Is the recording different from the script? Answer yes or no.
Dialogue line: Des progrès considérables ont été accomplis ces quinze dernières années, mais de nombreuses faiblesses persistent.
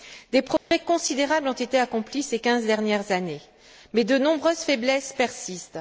no